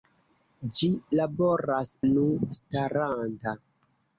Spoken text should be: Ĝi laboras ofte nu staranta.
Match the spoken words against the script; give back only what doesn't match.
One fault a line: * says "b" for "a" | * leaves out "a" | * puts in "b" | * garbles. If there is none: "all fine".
* leaves out "ofte"